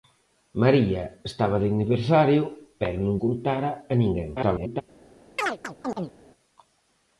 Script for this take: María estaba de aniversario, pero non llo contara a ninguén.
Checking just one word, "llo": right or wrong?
wrong